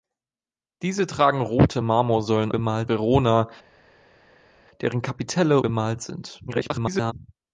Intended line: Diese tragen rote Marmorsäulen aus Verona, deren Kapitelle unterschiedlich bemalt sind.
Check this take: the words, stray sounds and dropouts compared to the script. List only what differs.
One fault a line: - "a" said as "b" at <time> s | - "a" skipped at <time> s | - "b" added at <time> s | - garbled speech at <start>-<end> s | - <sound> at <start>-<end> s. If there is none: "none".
- "aus" said as "bemalt" at 2.5 s
- "unterschiedlich" skipped at 5.6 s
- garbled speech at 6.5-7.1 s